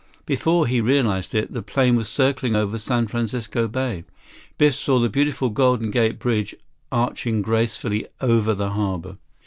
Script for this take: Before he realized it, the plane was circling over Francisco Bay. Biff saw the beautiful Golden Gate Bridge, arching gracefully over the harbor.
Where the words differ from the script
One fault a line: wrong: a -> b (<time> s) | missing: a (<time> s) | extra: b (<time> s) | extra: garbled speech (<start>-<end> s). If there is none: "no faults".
extra: San (2.8 s)